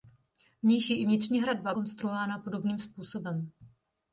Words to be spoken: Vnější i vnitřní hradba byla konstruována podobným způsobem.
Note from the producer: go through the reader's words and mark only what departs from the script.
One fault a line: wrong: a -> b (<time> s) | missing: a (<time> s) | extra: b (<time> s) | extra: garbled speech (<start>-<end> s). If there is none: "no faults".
missing: byla (1.7 s)